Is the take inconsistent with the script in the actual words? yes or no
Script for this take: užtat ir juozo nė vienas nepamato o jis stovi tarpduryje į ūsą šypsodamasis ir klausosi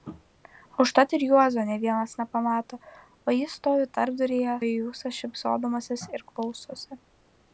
no